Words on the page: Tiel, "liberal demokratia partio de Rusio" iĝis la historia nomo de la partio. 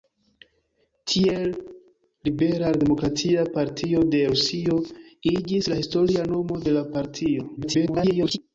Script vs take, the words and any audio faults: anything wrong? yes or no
yes